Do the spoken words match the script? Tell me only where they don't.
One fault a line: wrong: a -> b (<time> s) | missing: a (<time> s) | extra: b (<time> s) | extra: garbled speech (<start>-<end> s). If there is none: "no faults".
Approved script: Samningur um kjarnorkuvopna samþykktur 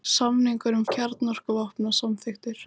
no faults